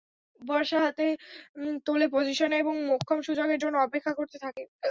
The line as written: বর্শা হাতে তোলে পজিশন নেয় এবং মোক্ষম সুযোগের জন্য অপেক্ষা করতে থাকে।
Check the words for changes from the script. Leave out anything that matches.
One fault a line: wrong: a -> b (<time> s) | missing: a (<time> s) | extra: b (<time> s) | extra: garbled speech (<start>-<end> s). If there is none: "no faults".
no faults